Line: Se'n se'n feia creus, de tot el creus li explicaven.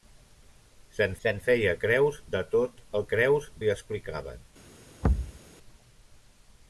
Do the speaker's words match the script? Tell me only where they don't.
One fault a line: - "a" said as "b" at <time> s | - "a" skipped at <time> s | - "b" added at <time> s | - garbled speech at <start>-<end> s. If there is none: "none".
none